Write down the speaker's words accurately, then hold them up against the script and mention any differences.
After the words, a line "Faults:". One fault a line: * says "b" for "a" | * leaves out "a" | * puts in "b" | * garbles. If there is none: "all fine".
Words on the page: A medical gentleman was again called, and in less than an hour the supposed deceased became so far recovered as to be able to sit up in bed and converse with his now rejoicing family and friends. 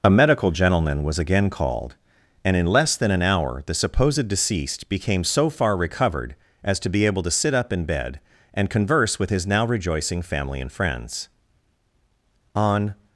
A medical gentleman was again called, and in less than an hour the supposed deceased became so far recovered as to be able to sit up in bed and converse with his now rejoicing family and friends. On
Faults:
* puts in "On"